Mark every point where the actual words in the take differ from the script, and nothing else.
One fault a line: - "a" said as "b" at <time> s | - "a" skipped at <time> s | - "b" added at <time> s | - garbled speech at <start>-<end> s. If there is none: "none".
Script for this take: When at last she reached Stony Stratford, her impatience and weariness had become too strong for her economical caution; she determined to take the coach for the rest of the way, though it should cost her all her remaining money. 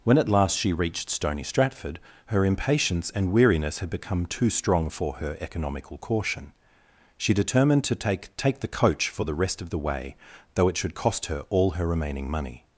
- "take" added at 8.4 s